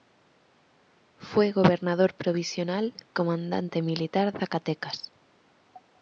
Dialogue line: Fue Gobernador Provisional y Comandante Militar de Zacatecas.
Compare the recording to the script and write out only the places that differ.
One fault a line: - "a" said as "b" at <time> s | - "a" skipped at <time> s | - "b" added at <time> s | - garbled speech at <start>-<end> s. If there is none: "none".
- "y" skipped at 3.0 s
- "de" skipped at 4.3 s